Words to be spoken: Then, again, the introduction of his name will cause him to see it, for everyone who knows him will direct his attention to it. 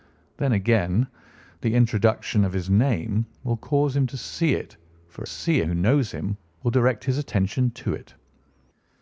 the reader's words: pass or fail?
fail